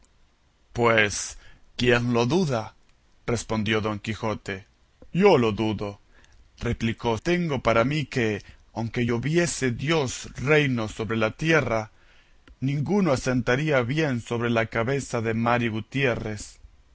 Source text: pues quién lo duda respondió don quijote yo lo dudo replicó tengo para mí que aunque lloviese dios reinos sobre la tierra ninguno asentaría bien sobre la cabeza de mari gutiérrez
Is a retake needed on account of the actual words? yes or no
no